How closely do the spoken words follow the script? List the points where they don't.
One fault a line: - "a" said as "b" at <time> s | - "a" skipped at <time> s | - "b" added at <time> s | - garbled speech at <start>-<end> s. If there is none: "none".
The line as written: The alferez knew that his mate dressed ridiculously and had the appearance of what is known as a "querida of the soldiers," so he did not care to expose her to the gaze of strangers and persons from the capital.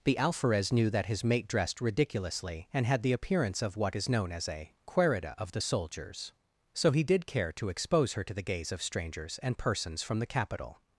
- "not" skipped at 7.3 s